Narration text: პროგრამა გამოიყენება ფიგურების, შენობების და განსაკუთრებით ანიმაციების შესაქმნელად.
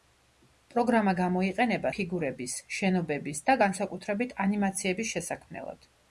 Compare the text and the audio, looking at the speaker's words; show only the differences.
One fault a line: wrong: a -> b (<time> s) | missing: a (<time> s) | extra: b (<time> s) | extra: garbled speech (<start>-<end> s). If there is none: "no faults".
no faults